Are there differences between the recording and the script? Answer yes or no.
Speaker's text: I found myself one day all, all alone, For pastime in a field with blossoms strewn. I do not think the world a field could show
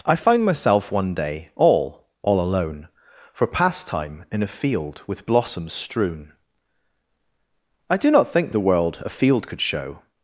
no